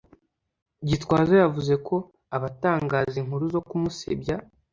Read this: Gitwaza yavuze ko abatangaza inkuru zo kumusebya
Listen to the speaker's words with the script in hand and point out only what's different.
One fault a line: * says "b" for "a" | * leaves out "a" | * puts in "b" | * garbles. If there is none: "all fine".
all fine